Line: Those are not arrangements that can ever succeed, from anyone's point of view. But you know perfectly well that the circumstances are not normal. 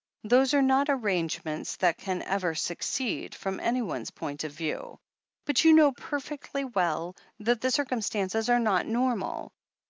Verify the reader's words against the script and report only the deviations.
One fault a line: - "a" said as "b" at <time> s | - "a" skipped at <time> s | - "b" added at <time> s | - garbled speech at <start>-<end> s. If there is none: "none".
none